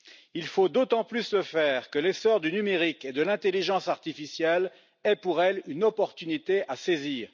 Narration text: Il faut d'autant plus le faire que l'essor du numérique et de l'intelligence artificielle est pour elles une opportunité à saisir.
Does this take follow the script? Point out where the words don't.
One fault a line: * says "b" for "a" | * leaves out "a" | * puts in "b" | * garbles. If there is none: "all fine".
all fine